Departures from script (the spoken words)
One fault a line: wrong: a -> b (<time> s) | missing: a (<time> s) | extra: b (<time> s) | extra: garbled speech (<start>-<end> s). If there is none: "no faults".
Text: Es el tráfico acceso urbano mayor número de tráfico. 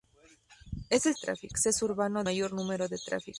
no faults